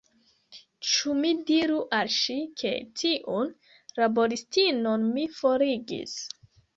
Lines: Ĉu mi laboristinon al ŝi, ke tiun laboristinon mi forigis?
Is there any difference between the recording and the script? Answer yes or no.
yes